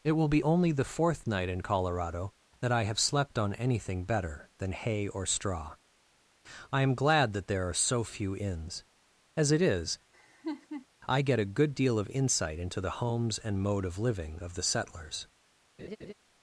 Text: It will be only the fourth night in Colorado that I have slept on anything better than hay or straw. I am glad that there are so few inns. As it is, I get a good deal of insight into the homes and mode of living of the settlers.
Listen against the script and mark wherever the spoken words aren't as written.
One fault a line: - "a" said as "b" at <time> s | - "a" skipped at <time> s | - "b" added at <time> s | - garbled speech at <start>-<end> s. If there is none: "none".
none